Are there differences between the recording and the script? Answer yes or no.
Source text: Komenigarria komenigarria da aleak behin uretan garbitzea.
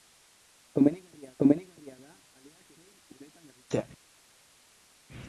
no